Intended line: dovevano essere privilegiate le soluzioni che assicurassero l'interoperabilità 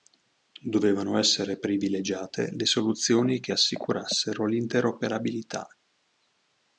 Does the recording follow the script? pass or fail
pass